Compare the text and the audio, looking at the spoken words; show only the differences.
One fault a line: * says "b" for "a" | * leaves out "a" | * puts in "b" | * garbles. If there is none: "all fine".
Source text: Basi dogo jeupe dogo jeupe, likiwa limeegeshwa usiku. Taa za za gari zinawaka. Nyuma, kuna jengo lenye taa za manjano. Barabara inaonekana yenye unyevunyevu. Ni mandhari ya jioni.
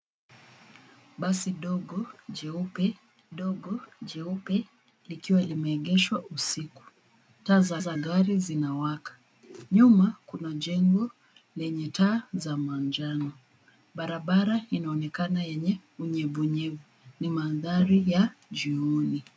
all fine